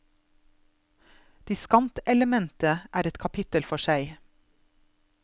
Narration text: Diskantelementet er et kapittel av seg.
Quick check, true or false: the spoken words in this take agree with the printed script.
false